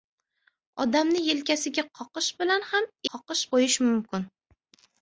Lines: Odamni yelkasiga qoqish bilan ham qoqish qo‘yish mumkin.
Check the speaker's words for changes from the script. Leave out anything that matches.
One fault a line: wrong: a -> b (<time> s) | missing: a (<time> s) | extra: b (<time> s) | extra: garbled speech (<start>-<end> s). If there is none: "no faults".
no faults